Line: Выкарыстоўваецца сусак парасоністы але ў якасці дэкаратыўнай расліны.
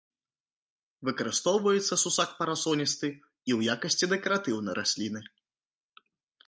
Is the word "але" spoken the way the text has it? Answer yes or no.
no